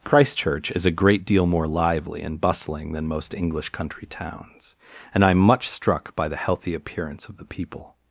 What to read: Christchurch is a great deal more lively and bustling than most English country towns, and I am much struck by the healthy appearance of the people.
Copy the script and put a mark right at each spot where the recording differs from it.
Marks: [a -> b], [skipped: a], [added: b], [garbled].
Christchurch is a great deal more lively and bustling than most English country towns, and I am much struck by the healthy appearance of the people.